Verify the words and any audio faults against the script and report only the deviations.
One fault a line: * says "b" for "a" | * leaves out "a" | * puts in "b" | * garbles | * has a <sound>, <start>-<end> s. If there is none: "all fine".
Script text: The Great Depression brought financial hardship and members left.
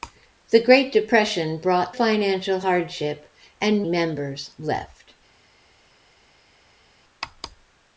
all fine